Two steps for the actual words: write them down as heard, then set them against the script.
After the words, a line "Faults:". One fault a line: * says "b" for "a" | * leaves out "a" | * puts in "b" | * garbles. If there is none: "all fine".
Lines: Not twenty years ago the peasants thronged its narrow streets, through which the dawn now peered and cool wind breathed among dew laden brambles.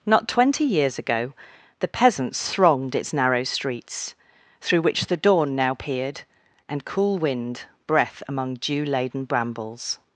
Not twenty years ago the peasants thronged its narrow streets, through which the dawn now peered and cool wind breath among dew laden brambles.
Faults:
* says "breath" for "breathed"